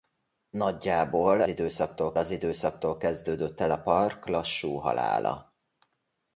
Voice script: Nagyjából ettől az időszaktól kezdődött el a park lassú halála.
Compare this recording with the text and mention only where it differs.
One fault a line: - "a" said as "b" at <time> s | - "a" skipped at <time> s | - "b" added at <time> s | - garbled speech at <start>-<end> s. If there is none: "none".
- "ettől" said as "időszaktól" at 1.5 s